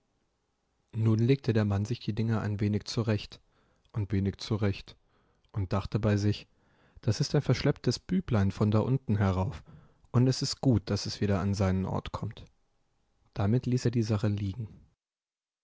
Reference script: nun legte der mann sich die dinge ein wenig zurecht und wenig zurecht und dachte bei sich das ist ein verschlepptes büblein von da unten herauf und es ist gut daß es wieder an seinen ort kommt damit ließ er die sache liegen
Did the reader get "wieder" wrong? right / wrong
right